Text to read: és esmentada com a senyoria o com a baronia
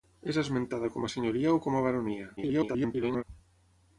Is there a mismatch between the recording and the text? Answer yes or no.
yes